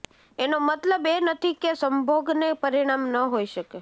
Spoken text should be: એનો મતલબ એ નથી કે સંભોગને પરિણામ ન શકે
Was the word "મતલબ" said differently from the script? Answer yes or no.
no